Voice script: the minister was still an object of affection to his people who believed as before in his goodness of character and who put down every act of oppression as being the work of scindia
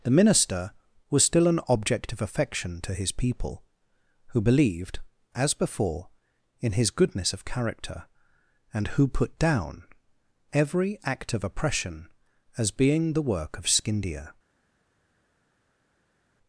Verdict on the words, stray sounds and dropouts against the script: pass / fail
pass